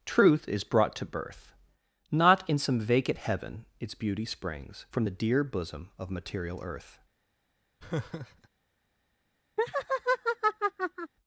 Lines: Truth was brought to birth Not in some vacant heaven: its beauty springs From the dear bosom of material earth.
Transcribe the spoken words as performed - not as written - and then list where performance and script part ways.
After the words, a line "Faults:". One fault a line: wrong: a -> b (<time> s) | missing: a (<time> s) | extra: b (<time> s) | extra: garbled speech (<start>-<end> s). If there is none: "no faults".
Truth is brought to birth Not in some vacant heaven: its beauty springs From the dear bosom of material earth.
Faults:
wrong: was -> is (0.5 s)